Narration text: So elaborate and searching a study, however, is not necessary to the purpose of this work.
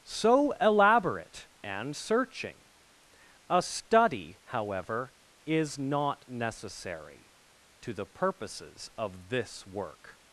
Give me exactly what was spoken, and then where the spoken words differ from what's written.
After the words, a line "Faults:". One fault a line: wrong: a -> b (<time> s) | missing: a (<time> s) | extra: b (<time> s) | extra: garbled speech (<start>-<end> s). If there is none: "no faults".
So elaborate and searching a study, however, is not necessary to the purposes of this work.
Faults:
wrong: purpose -> purposes (8.1 s)